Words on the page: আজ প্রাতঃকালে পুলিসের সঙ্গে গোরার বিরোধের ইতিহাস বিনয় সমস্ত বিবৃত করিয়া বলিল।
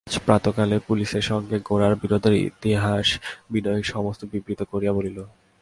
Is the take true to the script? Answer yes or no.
yes